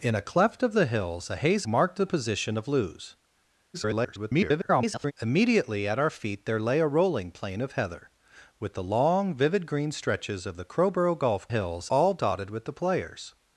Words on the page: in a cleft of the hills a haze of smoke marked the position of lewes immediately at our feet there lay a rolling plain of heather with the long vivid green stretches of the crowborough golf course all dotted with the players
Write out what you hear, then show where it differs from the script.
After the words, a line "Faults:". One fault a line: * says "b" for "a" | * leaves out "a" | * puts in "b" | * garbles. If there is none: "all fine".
in a cleft of the hills a haze marked the position of lewes [garbled] immediately at our feet there lay a rolling plain of heather with the long vivid green stretches of the crowborough golf hills all dotted with the players
Faults:
* leaves out "of smoke"
* garbles
* says "hills" for "course"